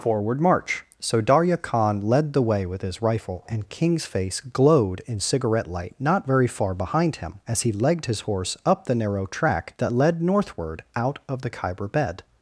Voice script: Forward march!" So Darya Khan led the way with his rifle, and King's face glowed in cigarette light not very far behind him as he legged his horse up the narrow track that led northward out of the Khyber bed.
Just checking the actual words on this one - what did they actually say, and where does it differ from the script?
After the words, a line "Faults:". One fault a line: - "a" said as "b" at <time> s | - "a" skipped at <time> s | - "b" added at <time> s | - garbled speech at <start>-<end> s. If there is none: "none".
Forward march!" So Darya Khan led the way with his rifle, and King's face glowed in cigarette light not very far behind him as he legged his horse up the narrow track that led northward out of the Khyber bed.
Faults:
none